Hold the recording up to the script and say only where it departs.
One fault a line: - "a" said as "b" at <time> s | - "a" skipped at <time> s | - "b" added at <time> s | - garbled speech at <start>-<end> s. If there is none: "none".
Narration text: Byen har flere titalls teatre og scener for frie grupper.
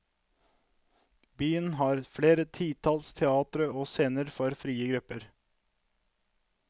none